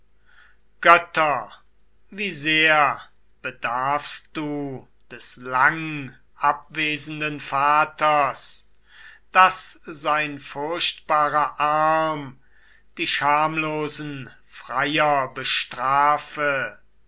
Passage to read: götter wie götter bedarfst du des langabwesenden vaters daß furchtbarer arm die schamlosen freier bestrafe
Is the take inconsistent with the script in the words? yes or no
yes